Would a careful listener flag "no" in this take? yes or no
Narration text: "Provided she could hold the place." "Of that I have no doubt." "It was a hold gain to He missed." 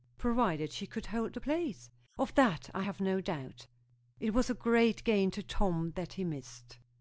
no